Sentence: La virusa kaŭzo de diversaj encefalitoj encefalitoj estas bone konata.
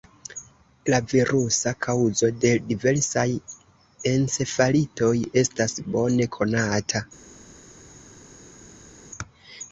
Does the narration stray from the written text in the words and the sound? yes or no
yes